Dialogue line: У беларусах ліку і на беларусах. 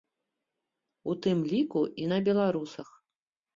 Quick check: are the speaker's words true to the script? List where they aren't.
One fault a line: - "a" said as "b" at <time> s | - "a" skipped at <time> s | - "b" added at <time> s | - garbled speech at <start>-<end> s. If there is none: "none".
- "беларусах" said as "тым" at 1.3 s